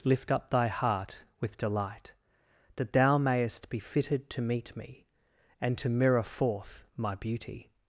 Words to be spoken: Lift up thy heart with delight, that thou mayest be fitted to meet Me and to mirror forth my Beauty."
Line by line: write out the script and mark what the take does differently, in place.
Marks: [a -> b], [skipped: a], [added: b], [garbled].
Lift up thy heart with delight, that thou mayest be fitted to meet Me and to mirror forth my Beauty."